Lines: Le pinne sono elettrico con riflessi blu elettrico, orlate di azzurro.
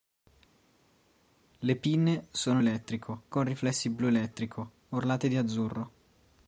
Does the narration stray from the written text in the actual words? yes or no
no